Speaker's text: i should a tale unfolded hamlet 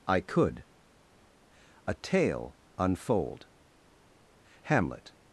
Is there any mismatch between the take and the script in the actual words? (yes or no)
yes